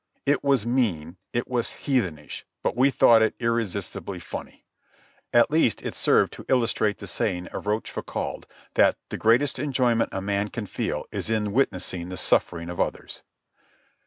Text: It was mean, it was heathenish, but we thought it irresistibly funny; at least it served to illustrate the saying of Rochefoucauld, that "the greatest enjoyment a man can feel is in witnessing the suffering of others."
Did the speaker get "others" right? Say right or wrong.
right